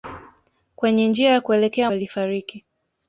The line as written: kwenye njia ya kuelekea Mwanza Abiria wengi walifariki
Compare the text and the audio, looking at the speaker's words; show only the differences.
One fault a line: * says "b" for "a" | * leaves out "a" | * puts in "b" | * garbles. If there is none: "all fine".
* leaves out "Mwanza Abiria wengi"